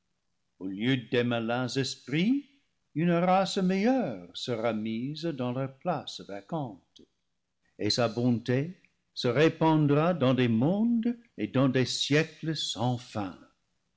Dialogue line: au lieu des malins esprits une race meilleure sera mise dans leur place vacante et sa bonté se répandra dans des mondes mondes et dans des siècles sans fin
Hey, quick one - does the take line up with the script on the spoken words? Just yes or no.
no